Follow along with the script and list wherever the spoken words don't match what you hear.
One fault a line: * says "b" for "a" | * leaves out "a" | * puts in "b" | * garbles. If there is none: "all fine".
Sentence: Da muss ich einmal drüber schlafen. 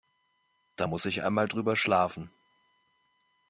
all fine